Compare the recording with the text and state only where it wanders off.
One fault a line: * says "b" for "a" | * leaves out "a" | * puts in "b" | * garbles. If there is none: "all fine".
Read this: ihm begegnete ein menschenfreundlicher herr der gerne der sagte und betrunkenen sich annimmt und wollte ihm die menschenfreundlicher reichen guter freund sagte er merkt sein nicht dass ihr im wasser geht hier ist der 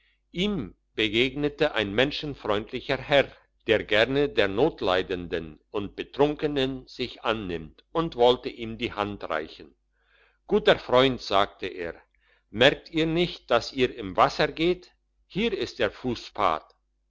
* says "notleidenden" for "sagte"
* says "hand" for "menschenfreundlicher"
* says "ihr" for "sein"